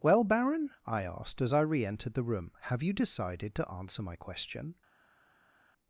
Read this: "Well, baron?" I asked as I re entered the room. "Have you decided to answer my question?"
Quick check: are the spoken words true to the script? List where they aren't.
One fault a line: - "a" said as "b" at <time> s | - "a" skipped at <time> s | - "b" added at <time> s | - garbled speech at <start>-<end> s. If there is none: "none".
none